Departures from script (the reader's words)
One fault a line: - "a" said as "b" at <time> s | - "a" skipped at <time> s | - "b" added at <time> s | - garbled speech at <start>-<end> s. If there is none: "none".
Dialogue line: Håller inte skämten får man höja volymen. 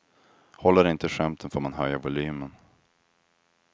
none